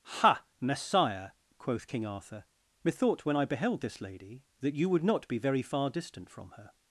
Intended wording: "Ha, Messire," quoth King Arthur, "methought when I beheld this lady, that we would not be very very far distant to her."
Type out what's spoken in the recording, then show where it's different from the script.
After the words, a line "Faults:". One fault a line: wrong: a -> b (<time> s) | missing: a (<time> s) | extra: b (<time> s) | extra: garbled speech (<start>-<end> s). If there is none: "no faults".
"Ha, Messire," quoth King Arthur, "methought when I beheld this lady, that you would not be very far distant from her."
Faults:
wrong: we -> you (4.7 s)
missing: very (5.6 s)
wrong: to -> from (6.3 s)